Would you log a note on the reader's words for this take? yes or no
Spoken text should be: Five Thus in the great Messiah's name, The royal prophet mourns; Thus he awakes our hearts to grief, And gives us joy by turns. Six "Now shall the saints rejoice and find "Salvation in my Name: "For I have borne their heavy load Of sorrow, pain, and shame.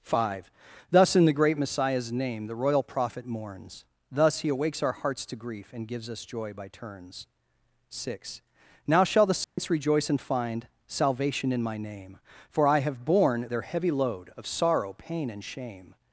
no